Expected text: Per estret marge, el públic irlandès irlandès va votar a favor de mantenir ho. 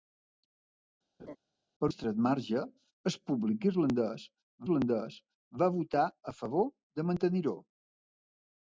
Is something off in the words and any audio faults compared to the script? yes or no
yes